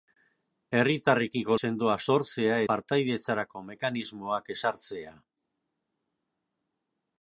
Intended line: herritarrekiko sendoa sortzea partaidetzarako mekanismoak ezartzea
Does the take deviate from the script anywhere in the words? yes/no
no